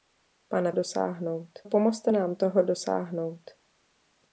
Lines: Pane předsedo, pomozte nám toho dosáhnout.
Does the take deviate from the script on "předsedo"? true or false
true